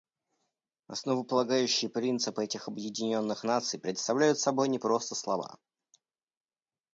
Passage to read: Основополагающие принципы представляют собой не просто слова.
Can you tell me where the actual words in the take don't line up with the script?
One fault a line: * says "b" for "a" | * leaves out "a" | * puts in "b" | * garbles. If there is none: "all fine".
* puts in "этих Объединенных Наций"